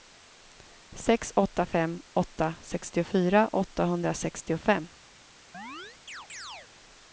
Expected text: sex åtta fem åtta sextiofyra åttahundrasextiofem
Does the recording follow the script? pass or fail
pass